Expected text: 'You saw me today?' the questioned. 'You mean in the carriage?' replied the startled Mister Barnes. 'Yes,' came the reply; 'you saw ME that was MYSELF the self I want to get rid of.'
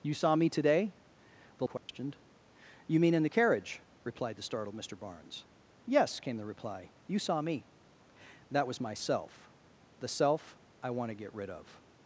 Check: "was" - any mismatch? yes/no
no